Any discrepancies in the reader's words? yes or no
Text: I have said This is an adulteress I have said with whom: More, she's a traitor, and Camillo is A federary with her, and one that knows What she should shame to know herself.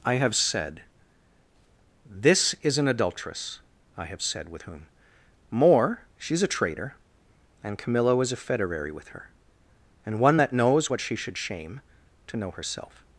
no